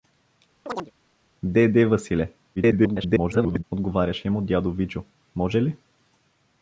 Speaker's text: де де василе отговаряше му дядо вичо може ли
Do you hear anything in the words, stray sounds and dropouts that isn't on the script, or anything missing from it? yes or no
yes